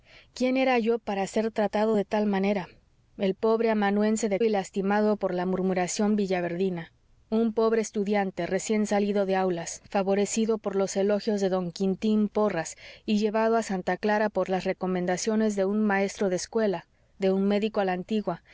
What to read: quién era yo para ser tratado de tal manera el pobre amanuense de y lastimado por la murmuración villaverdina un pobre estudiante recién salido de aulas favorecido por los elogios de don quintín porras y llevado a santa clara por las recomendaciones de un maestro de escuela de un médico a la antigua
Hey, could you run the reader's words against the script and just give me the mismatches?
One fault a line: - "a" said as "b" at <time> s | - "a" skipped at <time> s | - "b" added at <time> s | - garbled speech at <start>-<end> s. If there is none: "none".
none